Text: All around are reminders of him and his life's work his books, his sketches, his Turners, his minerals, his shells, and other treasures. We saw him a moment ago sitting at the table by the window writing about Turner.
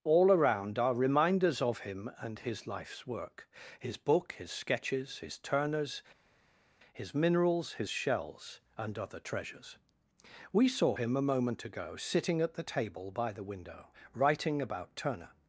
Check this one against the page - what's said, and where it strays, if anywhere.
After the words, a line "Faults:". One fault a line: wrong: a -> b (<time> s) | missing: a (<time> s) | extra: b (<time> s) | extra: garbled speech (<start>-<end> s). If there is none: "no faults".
All around are reminders of him and his life's work his book, his sketches, his Turners, his minerals, his shells, and other treasures. We saw him a moment ago sitting at the table by the window writing about Turner.
Faults:
wrong: books -> book (4.0 s)